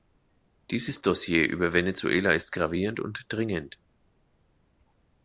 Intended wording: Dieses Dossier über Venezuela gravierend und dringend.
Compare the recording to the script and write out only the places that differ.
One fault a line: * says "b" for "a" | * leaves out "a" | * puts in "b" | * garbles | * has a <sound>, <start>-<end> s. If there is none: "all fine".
* puts in "ist"